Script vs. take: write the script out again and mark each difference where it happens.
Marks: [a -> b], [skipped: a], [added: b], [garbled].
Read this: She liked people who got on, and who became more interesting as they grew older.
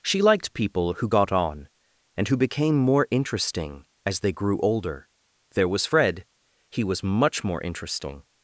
She liked people who got on, and who became more interesting as they grew older. [added: There was Fred he was much more interesting]